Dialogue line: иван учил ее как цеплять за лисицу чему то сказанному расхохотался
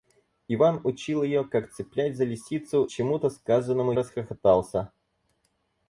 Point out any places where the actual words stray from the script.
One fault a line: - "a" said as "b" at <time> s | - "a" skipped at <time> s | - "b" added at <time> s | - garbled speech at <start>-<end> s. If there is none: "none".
none